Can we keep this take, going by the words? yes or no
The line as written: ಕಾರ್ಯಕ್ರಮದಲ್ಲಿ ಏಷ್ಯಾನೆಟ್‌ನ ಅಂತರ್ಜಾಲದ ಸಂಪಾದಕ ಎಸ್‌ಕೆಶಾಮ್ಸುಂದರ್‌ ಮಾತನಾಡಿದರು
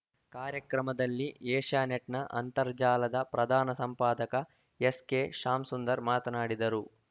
no